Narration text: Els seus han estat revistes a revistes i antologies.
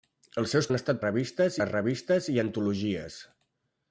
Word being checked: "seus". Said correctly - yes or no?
yes